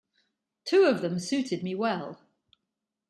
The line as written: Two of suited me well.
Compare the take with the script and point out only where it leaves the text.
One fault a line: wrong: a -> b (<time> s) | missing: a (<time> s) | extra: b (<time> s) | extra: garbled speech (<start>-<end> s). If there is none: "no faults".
extra: them (1.0 s)